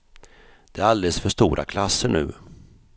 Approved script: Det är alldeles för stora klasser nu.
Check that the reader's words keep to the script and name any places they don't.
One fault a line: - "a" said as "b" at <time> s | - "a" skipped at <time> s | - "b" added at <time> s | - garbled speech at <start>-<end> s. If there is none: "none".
none